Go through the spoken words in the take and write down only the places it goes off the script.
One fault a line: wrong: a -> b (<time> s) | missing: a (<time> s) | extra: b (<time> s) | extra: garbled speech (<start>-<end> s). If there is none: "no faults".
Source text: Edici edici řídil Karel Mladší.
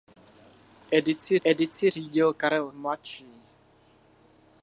no faults